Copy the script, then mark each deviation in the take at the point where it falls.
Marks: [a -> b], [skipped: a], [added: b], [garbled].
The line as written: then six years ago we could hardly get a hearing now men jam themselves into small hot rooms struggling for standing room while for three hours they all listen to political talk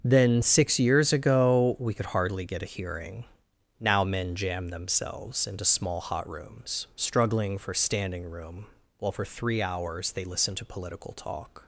then six years ago we could hardly get a hearing now men jam themselves into small hot rooms struggling for standing room while for three hours they [skipped: all] listen to political talk